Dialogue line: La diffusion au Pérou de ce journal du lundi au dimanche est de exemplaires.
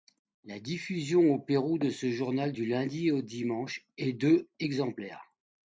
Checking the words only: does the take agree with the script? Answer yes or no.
yes